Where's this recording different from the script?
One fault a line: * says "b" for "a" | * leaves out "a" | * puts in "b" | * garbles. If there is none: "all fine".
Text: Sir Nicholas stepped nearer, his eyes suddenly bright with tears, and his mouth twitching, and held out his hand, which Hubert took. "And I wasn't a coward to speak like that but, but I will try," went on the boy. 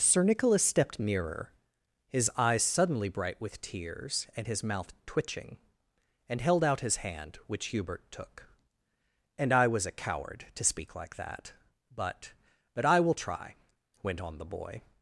* says "was" for "wasn't"